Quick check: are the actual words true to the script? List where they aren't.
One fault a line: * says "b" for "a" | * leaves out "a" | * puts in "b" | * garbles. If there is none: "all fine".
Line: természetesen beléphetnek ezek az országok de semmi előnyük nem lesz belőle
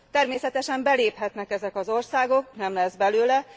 * leaves out "de semmi előnyük"